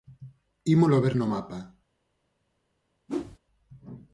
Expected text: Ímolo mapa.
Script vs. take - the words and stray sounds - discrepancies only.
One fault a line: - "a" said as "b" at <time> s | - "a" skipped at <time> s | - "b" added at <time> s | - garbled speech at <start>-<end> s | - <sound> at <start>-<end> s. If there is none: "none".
- "ver no" added at 1.0 s
- whoosh at 3.1-3.4 s